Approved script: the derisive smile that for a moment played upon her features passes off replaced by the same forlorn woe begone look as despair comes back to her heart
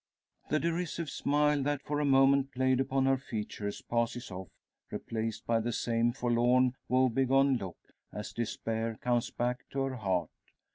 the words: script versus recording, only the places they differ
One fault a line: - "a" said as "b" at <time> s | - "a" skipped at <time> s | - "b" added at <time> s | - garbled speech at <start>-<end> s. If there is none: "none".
none